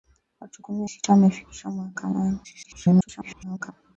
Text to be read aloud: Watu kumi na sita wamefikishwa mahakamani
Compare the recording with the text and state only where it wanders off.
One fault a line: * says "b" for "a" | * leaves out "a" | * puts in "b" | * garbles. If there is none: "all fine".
* leaves out "na"
* garbles